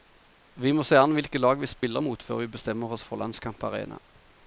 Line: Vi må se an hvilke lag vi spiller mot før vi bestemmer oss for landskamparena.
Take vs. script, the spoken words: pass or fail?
pass